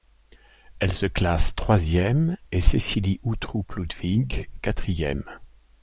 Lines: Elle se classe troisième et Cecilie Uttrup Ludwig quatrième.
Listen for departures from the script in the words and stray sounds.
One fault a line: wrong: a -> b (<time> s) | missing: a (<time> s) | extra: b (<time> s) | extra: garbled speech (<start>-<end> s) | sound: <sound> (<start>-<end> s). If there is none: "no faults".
no faults